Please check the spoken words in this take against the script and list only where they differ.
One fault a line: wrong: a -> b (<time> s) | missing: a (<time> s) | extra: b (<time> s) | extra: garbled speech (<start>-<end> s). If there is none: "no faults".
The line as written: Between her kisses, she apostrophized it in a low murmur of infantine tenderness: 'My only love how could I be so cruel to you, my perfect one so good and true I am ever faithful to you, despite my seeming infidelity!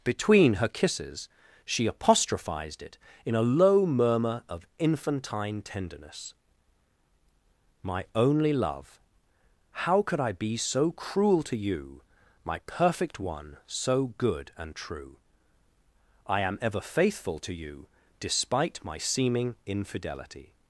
no faults